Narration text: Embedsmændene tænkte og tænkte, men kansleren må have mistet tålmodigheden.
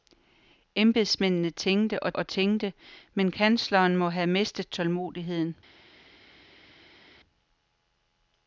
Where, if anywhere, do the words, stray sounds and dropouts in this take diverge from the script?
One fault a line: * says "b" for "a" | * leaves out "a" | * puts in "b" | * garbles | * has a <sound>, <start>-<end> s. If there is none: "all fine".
* puts in "og"